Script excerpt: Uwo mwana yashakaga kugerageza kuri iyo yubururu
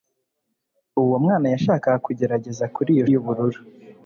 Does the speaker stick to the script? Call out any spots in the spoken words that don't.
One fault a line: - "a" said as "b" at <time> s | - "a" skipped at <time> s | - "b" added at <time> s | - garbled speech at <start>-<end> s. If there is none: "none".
none